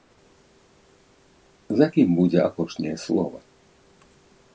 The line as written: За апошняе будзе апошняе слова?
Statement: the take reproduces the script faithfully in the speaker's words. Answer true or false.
false